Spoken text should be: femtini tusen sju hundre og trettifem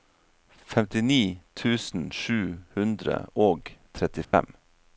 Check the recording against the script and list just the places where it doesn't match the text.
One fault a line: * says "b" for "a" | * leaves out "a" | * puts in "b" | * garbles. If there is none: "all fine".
all fine